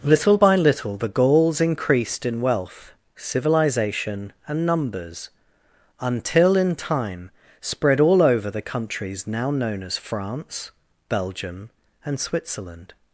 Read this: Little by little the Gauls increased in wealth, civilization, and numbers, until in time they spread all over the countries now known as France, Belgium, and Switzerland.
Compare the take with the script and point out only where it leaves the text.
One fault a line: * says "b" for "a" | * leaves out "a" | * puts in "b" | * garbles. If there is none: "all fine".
* leaves out "they"